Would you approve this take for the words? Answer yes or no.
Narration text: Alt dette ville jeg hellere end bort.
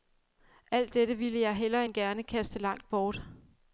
no